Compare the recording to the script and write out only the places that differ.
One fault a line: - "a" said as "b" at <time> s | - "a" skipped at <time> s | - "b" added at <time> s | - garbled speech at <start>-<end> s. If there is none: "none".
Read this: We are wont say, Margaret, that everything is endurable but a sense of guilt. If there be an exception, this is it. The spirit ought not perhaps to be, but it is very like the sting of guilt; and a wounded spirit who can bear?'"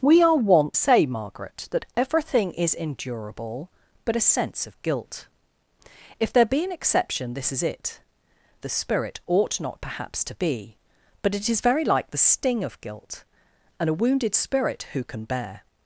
none